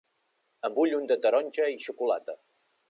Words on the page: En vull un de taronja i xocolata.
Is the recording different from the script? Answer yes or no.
no